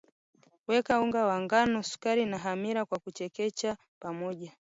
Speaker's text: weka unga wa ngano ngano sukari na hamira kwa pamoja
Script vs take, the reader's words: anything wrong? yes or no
yes